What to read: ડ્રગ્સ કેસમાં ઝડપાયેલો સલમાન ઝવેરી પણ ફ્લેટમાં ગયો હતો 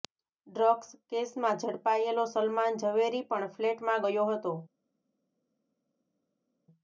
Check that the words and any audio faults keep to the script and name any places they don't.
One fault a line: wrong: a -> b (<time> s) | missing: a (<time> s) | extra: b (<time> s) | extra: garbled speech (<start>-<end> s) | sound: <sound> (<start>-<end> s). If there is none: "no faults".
no faults